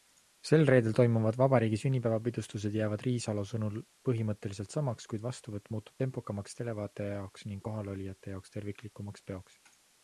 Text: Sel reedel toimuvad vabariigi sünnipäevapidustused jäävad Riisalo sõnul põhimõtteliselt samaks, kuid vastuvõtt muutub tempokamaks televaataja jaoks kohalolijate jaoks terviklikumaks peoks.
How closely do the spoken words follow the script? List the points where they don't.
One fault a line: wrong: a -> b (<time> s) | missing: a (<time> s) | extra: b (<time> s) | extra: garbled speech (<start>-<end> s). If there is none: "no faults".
extra: ning (7.5 s)